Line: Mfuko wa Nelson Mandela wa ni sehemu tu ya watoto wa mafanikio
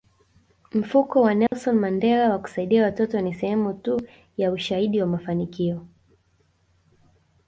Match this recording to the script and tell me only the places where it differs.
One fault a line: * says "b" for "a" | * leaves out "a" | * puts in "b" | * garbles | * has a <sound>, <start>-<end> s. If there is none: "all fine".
* has a dropout, 1.5-1.5 s
* puts in "kusaidia watoto"
* says "ushahidi" for "watoto"